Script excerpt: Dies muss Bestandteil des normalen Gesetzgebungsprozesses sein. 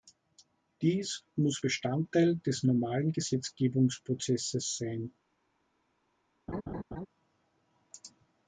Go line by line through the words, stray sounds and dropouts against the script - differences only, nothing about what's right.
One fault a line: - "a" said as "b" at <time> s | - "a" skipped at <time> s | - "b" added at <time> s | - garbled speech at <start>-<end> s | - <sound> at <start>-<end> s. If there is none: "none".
- laugh at 6.5-7.1 s